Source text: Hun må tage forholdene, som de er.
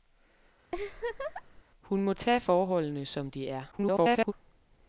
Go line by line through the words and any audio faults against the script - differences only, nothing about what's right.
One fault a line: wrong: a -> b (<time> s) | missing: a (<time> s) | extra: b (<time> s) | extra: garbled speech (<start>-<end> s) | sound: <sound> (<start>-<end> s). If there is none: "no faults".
sound: laugh (0.7-1.6 s)
extra: garbled speech (3.7-4.3 s)